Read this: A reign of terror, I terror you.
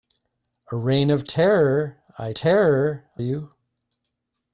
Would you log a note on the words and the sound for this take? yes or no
no